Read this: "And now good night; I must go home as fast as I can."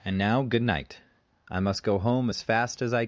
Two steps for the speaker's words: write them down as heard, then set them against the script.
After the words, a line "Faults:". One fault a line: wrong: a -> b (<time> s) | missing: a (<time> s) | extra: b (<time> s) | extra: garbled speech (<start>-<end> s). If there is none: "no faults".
"And now good night; I must go home as fast as I."
Faults:
missing: can (3.0 s)